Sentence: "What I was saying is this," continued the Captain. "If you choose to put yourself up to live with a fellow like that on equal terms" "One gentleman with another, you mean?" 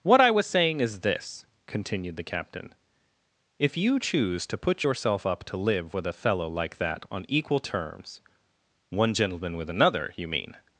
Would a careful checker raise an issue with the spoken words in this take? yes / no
no